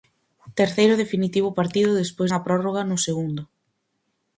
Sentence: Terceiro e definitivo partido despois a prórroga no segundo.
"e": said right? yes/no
yes